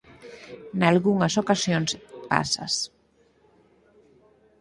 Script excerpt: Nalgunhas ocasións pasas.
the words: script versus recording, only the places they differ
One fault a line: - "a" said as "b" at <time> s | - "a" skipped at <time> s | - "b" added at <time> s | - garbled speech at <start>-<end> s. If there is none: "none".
none